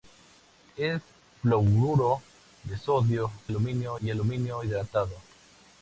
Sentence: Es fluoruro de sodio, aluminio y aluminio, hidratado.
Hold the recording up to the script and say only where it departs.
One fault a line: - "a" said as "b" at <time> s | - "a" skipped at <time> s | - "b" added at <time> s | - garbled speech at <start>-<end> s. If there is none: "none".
none